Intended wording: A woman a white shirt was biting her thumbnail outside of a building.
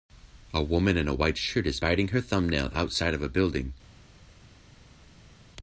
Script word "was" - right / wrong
wrong